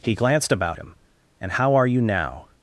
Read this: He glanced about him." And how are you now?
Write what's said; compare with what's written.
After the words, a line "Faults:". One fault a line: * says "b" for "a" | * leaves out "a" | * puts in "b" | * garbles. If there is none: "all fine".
He glanced about him." And how are you now?
Faults:
all fine